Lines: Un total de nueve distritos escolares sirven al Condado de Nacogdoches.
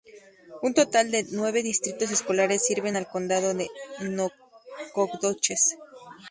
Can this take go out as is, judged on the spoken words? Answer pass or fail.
pass